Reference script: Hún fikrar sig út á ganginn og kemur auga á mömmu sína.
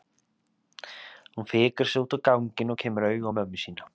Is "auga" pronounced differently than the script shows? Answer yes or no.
no